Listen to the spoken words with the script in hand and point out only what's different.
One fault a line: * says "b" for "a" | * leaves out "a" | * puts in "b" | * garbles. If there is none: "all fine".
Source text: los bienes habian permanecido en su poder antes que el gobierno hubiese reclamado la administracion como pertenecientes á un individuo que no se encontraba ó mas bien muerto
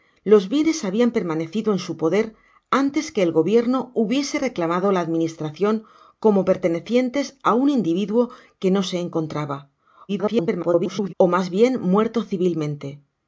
* garbles